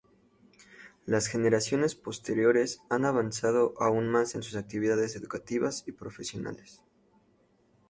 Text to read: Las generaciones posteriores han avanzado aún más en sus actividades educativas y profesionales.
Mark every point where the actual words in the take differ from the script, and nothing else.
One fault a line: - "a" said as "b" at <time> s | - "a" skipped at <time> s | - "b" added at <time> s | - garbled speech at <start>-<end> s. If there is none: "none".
none